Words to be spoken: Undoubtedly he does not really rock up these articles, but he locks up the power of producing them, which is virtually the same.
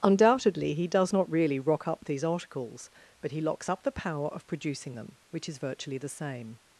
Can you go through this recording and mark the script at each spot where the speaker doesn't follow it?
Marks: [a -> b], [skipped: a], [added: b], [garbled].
Undoubtedly he does not really rock up these articles, but he locks up the power of producing them, which is virtually the same.